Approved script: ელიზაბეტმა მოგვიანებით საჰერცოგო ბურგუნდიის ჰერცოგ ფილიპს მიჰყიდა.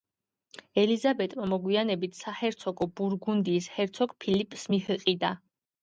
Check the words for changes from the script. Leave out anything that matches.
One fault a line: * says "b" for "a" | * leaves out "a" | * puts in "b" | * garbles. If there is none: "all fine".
all fine